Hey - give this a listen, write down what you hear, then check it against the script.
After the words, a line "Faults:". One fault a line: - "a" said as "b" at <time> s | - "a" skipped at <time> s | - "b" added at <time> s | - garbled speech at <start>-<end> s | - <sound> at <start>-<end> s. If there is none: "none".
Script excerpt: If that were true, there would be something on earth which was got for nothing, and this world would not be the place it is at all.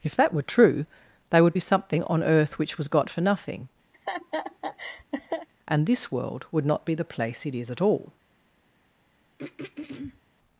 If that were true, they would be something on earth which was got for nothing, and this world would not be the place it is at all.
Faults:
- "there" said as "they" at 1.3 s
- laugh at 3.9-5.5 s
- throat clearing at 9.4-10.2 s